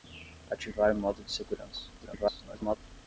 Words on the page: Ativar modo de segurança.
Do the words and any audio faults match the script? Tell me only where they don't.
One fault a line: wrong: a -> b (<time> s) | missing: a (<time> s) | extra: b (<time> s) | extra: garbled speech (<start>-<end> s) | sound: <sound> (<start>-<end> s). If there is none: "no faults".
extra: garbled speech (2.0-2.8 s)